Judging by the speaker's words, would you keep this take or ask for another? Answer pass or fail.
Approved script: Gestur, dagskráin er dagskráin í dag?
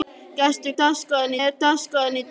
pass